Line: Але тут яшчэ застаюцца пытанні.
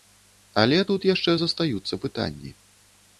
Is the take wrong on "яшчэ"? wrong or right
right